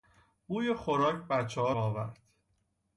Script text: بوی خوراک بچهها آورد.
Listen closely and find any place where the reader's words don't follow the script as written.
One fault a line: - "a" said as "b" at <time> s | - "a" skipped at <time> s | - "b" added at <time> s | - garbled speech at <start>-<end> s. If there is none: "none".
none